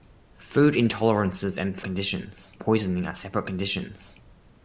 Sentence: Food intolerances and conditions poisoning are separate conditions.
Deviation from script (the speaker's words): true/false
false